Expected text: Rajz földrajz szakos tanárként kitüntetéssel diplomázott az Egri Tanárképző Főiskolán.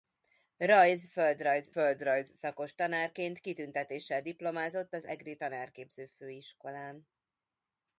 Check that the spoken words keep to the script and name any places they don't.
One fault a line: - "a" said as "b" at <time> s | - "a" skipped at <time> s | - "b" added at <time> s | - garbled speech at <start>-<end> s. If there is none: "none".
- "földrajz" added at 1.7 s